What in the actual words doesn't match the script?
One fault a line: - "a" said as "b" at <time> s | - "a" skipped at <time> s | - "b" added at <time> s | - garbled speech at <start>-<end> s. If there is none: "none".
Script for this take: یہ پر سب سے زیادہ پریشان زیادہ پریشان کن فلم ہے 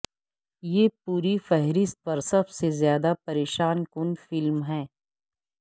- "پوری فہرست" added at 1.0 s
- "زیادہ پریشان" skipped at 3.8 s